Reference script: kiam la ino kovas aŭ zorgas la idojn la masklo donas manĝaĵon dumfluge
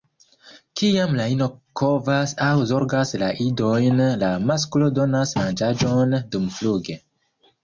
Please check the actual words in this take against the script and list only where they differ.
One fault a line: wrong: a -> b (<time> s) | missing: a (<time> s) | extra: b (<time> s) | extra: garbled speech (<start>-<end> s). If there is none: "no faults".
no faults